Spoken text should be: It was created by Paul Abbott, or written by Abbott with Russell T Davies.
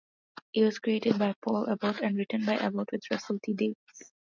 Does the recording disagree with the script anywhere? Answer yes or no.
yes